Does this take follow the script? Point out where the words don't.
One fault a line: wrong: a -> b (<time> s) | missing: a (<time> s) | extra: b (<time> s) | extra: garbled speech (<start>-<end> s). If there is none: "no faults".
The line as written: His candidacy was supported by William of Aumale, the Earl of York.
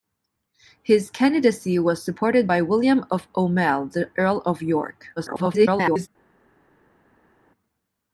extra: garbled speech (5.2-6.1 s)